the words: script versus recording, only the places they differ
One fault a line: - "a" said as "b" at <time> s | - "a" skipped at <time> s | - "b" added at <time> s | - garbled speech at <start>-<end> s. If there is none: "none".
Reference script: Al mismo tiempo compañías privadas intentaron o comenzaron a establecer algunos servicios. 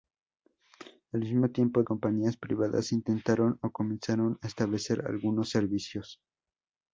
none